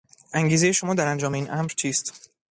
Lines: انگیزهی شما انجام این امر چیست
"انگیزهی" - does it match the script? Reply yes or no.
yes